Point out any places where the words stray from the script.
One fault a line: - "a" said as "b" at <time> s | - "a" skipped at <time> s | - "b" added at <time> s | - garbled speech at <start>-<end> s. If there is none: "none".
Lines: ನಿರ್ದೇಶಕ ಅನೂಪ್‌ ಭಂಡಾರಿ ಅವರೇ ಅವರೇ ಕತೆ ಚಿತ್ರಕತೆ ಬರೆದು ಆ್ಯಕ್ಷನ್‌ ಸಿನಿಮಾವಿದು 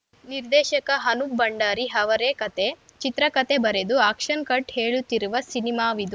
- "ಅವರೇ" skipped at 2.3 s
- "ಕಟ್ ಹೇಳುತ್ತಿರುವ" added at 4.4 s